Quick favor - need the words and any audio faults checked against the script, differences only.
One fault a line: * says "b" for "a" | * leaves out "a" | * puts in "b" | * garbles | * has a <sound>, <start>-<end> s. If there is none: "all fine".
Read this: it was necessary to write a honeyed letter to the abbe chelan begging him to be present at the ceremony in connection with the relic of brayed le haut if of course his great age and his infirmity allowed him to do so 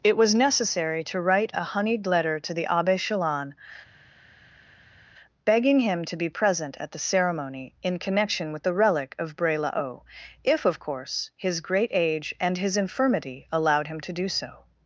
* says "bray" for "brayed"